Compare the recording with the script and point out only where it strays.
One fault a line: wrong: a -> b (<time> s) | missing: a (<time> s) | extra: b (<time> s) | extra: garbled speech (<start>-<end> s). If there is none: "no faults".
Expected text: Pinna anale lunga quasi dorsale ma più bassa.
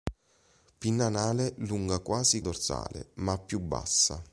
no faults